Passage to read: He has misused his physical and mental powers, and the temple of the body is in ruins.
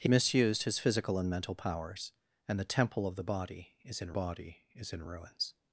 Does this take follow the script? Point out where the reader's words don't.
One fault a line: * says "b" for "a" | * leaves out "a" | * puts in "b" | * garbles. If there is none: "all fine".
* leaves out "has"
* puts in "body is in"